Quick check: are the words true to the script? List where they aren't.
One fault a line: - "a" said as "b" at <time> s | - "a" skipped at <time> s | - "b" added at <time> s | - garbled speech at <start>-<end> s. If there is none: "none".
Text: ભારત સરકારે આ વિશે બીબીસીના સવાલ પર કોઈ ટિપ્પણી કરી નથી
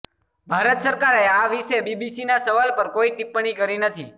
none